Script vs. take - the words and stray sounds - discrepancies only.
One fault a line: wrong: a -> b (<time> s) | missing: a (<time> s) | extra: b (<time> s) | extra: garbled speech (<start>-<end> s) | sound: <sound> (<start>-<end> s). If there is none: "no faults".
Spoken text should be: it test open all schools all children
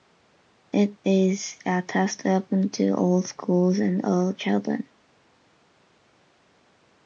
extra: is a (1.1 s)
extra: to (2.7 s)
extra: and (3.8 s)